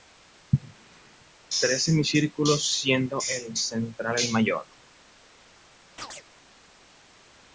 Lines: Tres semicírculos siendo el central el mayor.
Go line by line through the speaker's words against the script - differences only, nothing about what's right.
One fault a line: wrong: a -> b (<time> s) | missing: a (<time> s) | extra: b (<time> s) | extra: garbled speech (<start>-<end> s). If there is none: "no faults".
no faults